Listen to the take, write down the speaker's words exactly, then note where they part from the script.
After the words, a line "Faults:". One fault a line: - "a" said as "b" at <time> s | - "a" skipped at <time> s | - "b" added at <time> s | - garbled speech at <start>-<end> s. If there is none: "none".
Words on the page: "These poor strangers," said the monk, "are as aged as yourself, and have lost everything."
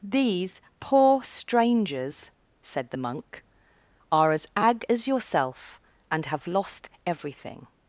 "These poor strangers," said the monk, "are as ag as yourself, and have lost everything."
Faults:
- "aged" said as "ag" at 4.6 s